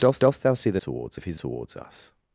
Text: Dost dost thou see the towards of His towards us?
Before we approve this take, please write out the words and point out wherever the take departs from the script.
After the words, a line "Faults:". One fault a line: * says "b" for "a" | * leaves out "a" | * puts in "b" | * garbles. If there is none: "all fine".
Dost dost thou see the towards of His towards us?
Faults:
all fine